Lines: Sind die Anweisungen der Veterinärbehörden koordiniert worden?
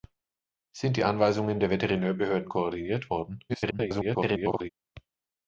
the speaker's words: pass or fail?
fail